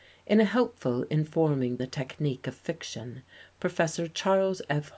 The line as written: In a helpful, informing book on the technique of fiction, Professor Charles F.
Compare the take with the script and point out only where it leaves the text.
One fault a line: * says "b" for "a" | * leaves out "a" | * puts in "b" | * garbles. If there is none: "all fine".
* leaves out "book on"